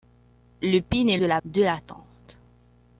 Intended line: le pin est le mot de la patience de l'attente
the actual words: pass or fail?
fail